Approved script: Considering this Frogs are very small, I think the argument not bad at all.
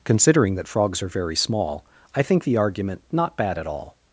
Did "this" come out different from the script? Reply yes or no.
yes